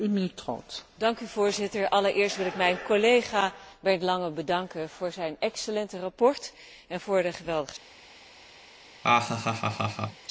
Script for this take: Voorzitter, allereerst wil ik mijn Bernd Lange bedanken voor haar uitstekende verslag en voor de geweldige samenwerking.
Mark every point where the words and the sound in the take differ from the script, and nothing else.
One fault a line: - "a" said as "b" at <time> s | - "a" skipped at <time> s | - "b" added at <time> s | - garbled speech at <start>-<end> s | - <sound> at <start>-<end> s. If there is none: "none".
- "collega" added at 2.9 s
- "haar" said as "zijn" at 5.1 s
- laugh at 9.0-10.3 s